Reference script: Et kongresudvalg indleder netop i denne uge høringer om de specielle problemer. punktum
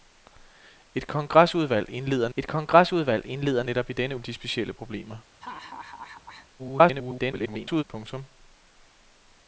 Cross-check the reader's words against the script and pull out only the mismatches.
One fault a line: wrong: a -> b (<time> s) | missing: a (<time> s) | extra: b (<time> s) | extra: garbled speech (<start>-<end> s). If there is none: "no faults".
extra: et kongresudvalg indleder (2.4 s)
missing: uge høringer (4.2 s)
extra: garbled speech (6.6-7.8 s)